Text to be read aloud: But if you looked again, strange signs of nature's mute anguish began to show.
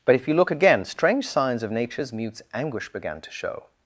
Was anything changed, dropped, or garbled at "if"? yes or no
no